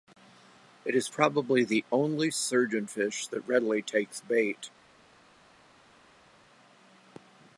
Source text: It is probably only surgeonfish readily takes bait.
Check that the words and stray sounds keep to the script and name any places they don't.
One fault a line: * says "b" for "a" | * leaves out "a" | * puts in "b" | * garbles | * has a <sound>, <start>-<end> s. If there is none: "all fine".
* puts in "the"
* puts in "that"